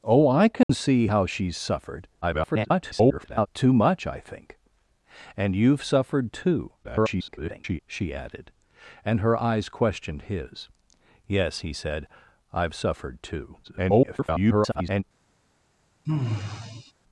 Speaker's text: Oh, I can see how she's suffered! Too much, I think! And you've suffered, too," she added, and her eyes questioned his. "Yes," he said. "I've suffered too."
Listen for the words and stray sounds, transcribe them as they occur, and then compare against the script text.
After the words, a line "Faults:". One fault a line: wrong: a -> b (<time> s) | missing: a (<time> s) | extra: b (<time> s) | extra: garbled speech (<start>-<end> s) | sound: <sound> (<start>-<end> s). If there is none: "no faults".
Oh, I can see how she's suffered! [garbled] Too much, I think! And you've suffered, too," [garbled] she added, and her eyes questioned his. "Yes," he said. "I've suffered too." [garbled]
Faults:
sound: dropout (0.6-0.7 s)
extra: garbled speech (2.2-3.5 s)
extra: garbled speech (6.8-7.8 s)
extra: garbled speech (13.6-15.0 s)
sound: sigh (16.1-16.9 s)